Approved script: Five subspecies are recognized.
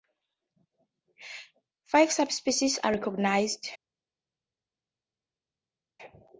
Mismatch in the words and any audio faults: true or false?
false